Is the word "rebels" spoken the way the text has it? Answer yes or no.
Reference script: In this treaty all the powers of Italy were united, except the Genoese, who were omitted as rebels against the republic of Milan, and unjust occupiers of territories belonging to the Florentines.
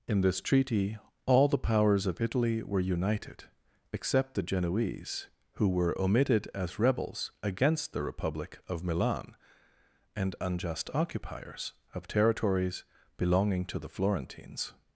yes